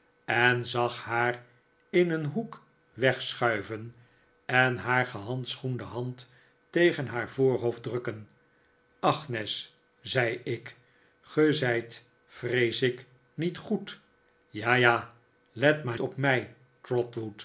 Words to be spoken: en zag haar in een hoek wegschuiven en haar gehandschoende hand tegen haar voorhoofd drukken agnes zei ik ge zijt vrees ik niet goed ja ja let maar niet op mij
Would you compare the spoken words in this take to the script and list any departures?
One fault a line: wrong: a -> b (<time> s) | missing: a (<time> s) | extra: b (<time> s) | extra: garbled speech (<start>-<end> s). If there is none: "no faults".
missing: niet (16.0 s)